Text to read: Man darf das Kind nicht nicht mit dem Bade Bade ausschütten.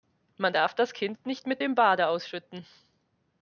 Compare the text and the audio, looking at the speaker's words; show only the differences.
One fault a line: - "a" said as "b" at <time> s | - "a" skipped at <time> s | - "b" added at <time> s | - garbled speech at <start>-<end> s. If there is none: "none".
- "nicht" skipped at 1.5 s
- "Bade" skipped at 2.1 s